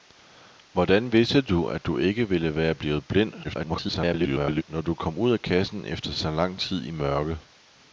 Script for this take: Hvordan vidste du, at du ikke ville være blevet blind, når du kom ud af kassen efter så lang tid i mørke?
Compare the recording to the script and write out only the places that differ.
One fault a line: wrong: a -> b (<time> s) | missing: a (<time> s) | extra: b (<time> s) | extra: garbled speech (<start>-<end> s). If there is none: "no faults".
extra: garbled speech (3.4-4.6 s)